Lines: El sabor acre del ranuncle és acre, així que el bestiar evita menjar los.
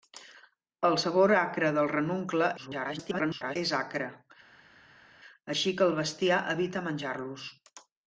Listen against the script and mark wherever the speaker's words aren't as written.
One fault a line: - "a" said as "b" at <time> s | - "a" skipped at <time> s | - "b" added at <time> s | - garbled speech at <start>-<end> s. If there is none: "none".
- garbled speech at 2.6-3.6 s